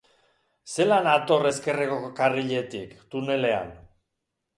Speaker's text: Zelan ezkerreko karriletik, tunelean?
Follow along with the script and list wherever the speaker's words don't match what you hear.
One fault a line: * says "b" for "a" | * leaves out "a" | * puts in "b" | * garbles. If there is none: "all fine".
* puts in "hator"